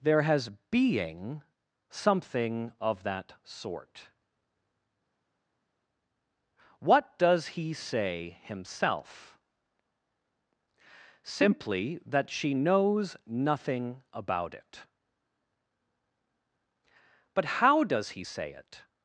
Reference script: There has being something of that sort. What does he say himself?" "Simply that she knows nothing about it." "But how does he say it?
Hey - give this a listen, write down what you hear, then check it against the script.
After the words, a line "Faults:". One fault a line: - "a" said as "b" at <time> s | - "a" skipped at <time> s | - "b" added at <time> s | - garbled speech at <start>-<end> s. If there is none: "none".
There has being something of that sort. What does he say himself?" "Simply that she knows nothing about it." "But how does he say it?
Faults:
none